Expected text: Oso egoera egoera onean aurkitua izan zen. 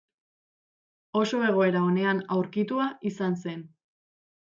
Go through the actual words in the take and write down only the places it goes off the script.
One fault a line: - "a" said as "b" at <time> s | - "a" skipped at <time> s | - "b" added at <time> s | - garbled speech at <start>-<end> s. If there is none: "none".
- "egoera" skipped at 1.8 s